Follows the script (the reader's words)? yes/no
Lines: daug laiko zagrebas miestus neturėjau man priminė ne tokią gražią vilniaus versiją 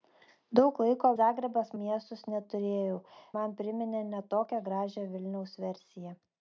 yes